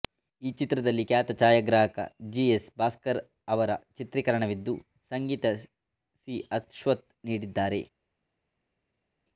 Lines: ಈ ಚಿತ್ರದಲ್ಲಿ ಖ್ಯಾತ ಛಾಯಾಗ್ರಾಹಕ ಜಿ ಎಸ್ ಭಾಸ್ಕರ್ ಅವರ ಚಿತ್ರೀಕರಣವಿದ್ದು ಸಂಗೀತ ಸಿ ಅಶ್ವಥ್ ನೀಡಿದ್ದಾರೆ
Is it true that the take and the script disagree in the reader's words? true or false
false